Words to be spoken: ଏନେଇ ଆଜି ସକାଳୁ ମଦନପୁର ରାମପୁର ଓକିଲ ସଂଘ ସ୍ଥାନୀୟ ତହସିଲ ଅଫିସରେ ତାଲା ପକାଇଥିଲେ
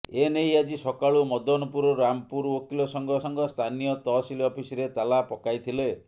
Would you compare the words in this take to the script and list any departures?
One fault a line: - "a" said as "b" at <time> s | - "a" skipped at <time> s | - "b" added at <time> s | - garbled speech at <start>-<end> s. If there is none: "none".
- "ସଂଘ" added at 3.2 s